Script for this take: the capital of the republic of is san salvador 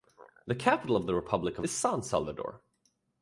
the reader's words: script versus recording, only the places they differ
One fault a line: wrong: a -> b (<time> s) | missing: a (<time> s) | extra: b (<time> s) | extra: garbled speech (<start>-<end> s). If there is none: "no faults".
no faults